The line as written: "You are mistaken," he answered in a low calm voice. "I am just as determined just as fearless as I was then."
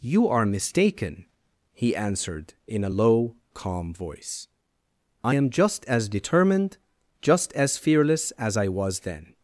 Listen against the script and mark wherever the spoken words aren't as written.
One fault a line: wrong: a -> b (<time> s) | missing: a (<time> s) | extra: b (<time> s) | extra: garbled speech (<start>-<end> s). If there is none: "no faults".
no faults